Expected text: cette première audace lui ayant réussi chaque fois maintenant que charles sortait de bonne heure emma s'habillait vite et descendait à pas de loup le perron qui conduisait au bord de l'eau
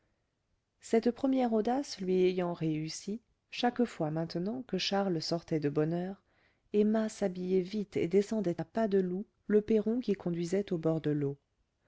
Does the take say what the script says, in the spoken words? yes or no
yes